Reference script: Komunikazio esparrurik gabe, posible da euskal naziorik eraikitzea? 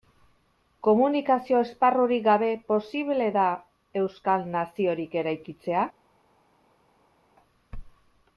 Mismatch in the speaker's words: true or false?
false